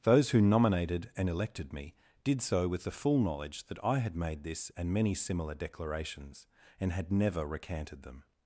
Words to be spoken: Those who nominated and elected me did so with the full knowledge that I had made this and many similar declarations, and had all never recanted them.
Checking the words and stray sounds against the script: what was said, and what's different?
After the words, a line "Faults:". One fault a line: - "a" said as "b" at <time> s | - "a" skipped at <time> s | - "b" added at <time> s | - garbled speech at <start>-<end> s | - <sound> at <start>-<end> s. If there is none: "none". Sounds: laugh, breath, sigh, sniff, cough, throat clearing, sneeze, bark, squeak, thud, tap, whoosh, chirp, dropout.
Those who nominated and elected me did so with the full knowledge that I had made this and many similar declarations, and had never recanted them.
Faults:
- "all" skipped at 7.1 s